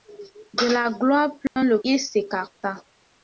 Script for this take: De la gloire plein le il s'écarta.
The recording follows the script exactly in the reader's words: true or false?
true